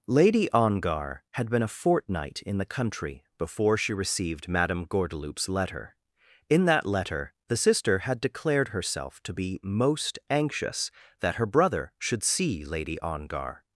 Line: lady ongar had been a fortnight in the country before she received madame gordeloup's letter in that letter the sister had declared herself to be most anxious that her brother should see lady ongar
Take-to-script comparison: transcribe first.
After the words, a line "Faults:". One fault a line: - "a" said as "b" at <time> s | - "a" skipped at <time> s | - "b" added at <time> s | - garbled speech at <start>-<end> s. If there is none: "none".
lady ongar had been a fortnight in the country before she received madame gordeloup's letter in that letter the sister had declared herself to be most anxious that her brother should see lady ongar
Faults:
none